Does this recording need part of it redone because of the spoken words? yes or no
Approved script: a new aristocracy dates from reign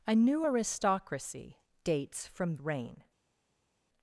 no